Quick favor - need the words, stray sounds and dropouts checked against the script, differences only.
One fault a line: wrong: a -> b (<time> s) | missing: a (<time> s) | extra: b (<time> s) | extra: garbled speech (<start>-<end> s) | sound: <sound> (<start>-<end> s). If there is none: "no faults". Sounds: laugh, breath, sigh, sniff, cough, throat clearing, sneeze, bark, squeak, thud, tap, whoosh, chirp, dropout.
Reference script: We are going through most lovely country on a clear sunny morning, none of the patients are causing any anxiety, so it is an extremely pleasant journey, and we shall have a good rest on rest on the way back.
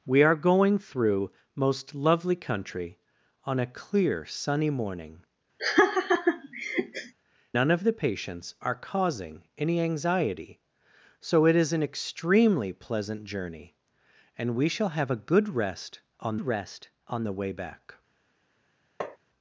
sound: laugh (5.6-7.1 s)
sound: tap (19.0-19.2 s)